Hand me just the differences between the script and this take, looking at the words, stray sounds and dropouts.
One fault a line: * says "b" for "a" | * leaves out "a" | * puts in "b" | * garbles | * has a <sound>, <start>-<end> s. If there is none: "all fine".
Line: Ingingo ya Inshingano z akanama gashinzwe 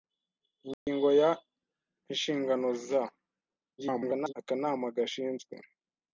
* has a dropout, 0.7-0.9 s
* garbles